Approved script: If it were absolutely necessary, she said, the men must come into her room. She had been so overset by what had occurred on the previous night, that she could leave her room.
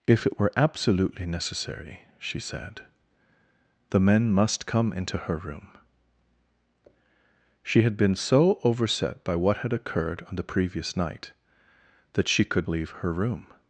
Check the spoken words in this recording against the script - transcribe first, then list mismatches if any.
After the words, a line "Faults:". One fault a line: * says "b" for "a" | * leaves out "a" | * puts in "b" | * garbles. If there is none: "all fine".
If it were absolutely necessary, she said, the men must come into her room. She had been so overset by what had occurred on the previous night, that she could leave her room.
Faults:
all fine